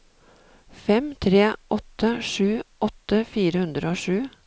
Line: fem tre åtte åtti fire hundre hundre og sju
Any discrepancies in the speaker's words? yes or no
yes